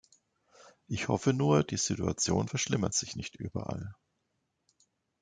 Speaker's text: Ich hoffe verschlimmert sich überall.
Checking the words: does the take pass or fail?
fail